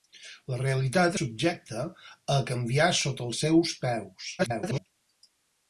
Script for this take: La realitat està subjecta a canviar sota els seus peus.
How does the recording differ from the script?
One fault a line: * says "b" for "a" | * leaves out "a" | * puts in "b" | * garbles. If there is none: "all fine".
* leaves out "està"
* garbles